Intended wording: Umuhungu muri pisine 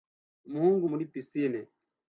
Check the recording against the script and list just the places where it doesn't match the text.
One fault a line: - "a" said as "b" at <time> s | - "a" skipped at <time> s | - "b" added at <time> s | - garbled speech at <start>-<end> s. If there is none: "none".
none